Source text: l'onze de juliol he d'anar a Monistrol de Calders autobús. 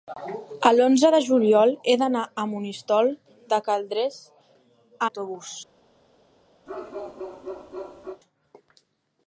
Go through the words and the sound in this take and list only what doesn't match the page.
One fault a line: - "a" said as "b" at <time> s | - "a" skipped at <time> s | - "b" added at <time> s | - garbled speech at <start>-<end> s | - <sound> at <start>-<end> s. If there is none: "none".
- bark at 6.7-8.2 s